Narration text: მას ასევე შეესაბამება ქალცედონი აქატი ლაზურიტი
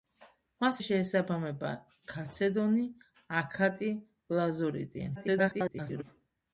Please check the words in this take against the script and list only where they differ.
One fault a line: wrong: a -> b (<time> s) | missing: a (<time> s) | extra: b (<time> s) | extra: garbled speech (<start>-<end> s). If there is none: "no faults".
missing: ასევე (0.8 s)
extra: garbled speech (5.1-6.0 s)